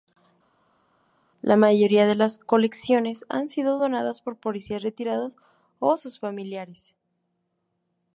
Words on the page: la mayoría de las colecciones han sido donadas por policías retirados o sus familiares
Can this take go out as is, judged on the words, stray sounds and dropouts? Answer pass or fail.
pass